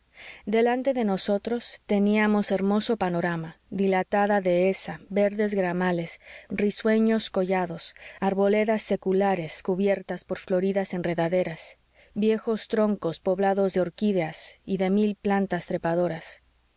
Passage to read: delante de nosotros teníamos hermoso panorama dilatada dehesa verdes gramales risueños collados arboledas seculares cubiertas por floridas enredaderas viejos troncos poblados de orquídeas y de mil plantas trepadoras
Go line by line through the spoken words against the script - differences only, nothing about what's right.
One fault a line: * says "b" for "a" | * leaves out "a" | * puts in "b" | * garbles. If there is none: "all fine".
all fine